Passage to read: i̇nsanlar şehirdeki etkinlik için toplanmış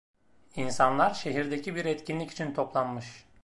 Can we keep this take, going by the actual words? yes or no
no